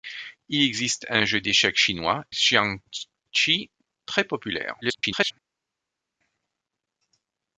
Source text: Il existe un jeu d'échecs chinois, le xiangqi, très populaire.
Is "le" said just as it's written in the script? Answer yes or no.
no